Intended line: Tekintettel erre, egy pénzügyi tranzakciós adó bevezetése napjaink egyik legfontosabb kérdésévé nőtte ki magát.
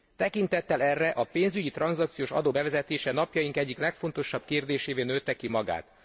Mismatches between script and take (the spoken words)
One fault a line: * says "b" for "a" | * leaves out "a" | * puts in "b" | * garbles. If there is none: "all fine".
* says "a" for "egy"